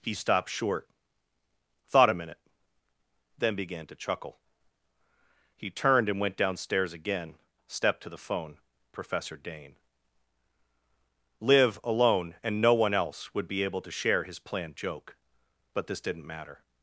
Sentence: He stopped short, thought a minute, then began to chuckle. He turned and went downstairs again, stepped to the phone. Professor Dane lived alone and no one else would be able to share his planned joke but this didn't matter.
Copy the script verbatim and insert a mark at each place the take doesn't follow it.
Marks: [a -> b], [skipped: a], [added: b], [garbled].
He stopped short, thought a minute, then began to chuckle. He turned and went downstairs again, stepped to the phone. Professor Dane [lived -> liv] alone and no one else would be able to share his planned joke but this didn't matter.